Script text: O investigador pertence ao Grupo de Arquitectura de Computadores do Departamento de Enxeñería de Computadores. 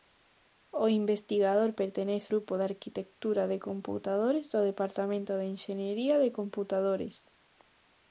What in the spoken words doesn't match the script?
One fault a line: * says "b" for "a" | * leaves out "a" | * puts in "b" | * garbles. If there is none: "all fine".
* leaves out "ao"